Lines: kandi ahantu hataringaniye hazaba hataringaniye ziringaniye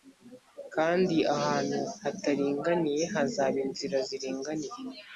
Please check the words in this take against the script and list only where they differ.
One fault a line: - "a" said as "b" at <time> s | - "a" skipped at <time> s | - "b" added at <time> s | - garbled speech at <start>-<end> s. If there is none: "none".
- "hataringaniye" said as "inzira" at 3.6 s